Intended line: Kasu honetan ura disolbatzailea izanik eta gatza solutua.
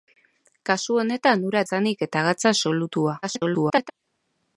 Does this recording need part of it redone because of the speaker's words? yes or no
yes